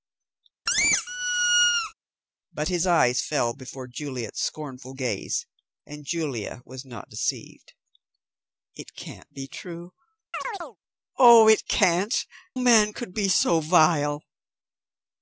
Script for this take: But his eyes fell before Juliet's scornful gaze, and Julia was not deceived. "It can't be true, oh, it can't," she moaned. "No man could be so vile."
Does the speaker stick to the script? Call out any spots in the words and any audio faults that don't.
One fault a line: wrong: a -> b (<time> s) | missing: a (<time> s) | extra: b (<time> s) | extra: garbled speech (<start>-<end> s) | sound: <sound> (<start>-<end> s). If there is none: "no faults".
sound: squeak (0.7-1.9 s)
sound: chirp (10.3-10.8 s)
missing: she moaned No (12.2 s)